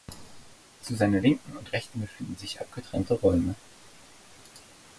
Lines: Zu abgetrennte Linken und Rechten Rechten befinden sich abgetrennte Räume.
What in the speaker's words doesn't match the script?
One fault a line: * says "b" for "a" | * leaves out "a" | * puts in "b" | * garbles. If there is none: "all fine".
* says "seiner" for "abgetrennte"
* leaves out "Rechten"